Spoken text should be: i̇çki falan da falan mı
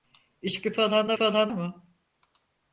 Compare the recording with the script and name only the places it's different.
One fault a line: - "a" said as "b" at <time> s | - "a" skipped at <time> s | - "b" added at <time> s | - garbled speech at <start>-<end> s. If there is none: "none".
none